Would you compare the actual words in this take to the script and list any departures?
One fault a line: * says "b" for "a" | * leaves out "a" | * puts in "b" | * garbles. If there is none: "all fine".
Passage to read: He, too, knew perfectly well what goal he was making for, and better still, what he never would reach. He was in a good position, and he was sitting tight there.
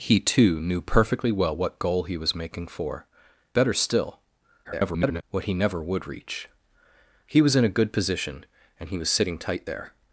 * leaves out "and"
* garbles